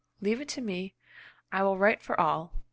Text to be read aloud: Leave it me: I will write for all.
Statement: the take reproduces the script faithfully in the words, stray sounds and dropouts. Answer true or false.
false